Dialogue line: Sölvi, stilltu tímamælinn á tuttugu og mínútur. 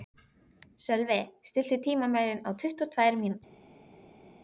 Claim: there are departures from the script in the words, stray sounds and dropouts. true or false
true